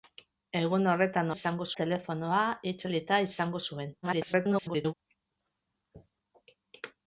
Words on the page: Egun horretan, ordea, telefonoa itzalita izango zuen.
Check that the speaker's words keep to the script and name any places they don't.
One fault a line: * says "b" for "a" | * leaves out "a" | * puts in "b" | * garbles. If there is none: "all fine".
* says "izango" for "ordea"
* garbles